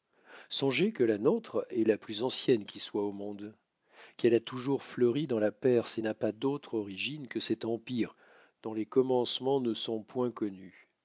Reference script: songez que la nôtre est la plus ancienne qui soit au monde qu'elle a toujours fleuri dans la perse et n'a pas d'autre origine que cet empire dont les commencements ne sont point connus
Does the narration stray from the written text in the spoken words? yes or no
no